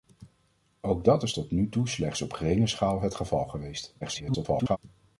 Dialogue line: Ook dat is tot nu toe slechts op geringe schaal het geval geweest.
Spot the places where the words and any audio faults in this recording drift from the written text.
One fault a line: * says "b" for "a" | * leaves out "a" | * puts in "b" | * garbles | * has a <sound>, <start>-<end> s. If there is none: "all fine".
* garbles